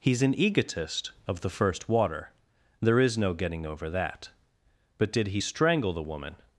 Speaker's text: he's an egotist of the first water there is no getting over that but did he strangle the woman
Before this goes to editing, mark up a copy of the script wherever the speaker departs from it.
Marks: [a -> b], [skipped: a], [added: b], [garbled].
he's an egotist of the first water there is no getting over that but did he strangle the woman